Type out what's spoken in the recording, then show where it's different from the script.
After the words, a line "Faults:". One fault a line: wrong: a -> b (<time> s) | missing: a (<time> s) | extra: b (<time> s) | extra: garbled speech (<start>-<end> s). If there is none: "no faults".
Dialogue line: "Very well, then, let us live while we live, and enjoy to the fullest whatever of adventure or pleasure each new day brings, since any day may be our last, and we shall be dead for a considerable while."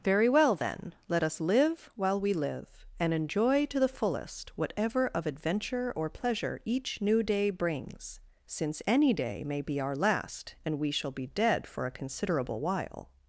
"Very well, then, let us live while we live, and enjoy to the fullest whatever of adventure or pleasure each new day brings, since any day may be our last, and we shall be dead for a considerable while."
Faults:
no faults